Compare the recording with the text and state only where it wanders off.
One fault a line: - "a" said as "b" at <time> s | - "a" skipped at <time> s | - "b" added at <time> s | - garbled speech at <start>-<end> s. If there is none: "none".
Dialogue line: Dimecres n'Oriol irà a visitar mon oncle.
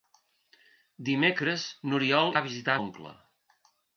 - "irà" skipped at 2.3 s
- "mon" skipped at 2.8 s